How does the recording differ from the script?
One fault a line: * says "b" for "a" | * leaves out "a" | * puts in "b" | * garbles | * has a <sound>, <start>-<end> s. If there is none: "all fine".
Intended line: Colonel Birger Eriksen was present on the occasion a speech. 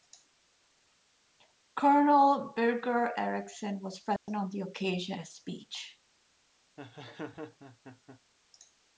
* has a dropout, 4.2-4.3 s
* has a laugh, 6.8-8.2 s